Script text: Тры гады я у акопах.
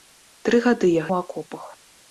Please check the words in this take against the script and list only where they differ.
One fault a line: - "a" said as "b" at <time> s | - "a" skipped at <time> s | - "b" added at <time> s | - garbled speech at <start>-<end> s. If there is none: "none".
none